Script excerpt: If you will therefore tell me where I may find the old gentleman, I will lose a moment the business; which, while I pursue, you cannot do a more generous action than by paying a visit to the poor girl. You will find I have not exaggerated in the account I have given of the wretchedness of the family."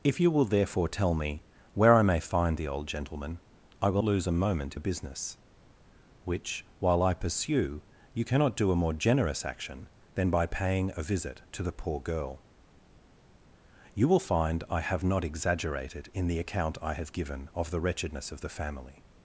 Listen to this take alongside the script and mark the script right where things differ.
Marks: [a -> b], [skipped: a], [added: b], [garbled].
If you will therefore tell me where I may find the old gentleman, I will lose a moment the business; which, while I pursue, you cannot do a more generous action than by paying a visit to the poor girl. You will find I have not exaggerated in the account I have given of the wretchedness of the family."